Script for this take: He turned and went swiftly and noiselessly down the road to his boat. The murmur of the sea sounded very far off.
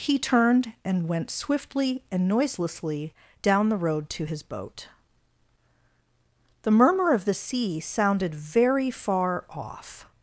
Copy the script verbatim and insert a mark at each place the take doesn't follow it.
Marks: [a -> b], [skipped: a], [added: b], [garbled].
He turned and went swiftly and noiselessly down the road to his boat. The murmur of the sea sounded very far off.